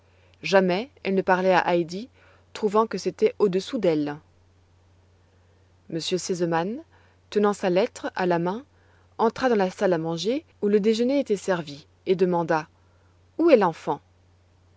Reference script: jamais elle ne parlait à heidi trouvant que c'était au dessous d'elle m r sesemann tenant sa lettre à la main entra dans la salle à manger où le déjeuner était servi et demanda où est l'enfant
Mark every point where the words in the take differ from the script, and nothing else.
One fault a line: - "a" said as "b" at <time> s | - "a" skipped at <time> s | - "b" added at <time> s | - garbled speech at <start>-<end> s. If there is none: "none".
none